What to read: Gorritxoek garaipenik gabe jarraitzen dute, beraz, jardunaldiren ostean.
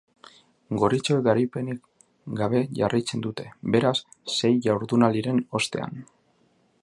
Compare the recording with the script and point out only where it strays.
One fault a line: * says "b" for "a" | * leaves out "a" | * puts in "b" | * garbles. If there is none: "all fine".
* puts in "sei"